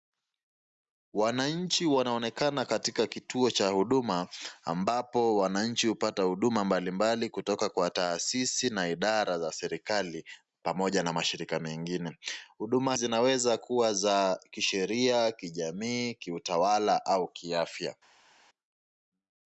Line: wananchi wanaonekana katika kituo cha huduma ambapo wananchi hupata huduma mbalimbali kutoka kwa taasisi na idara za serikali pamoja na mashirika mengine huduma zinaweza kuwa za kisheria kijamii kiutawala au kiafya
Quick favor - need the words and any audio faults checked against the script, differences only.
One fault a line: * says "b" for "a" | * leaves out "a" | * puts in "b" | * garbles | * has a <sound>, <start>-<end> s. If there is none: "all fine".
all fine